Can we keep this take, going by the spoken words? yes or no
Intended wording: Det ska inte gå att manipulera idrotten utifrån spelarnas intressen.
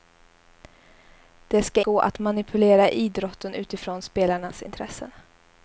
no